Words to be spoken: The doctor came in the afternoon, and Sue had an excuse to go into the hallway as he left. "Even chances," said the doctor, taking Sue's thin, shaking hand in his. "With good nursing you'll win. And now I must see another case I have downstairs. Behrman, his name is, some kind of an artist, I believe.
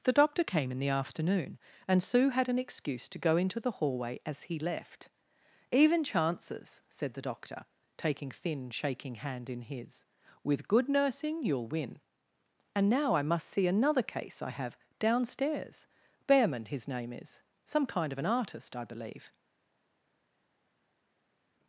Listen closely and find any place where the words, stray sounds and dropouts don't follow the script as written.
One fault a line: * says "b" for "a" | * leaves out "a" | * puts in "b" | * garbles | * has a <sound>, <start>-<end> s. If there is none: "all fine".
* leaves out "Sue's"